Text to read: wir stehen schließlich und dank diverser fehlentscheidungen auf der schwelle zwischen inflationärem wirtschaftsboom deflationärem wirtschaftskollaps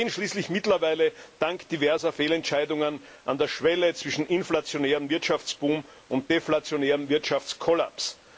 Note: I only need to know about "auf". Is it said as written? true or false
false